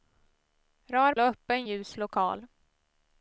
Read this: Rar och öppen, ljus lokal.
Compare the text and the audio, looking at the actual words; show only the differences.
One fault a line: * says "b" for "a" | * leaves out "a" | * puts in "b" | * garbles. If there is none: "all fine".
all fine